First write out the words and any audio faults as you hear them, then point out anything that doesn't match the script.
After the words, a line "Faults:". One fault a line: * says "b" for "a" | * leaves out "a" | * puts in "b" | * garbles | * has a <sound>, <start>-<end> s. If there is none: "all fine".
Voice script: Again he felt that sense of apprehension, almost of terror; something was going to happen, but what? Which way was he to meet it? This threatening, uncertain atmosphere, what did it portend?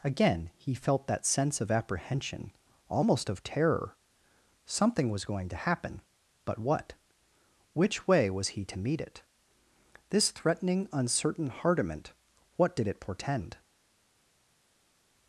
Again he felt that sense of apprehension, almost of terror; something was going to happen, but what? Which way was he to meet it? This threatening, uncertain hardiment, what did it portend?
Faults:
* says "hardiment" for "atmosphere"